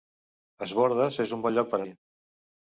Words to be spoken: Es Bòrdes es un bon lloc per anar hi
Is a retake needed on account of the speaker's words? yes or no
yes